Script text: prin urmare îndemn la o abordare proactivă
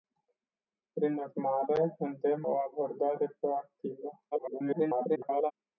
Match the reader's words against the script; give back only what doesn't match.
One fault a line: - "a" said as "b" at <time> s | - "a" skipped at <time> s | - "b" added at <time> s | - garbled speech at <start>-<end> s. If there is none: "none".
- "la" skipped at 2.5 s
- garbled speech at 4.3-5.5 s